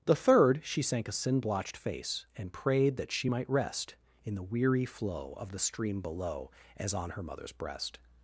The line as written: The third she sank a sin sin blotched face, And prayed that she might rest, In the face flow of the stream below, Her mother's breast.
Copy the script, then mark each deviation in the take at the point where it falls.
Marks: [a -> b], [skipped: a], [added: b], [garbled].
The third she sank a sin [skipped: sin] blotched face, And prayed that she might rest, In the [face -> weary] flow of the stream below, [added: As on] Her mother's breast.